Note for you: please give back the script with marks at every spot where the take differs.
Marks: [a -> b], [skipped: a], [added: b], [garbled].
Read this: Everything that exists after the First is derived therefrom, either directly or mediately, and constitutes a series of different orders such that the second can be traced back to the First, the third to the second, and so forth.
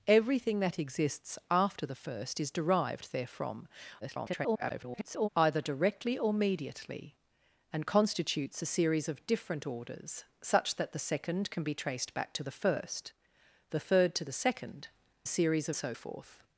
Everything that exists after the First is derived therefrom, [garbled] either directly or mediately, and constitutes a series of different orders such that the second can be traced back to the First, the third to the second, [and -> series] so forth.